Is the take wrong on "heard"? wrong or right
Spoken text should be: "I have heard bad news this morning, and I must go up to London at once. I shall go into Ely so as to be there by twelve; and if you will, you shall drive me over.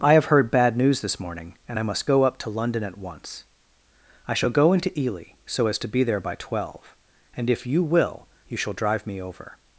right